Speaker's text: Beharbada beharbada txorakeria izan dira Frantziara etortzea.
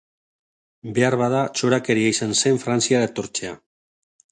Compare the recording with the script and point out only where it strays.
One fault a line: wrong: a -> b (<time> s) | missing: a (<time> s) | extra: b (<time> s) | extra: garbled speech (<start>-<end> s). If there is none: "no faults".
missing: beharbada (1.4 s)
wrong: dira -> zen (2.5 s)